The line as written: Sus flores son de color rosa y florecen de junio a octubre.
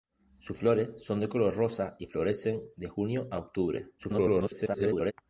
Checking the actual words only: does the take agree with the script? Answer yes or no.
no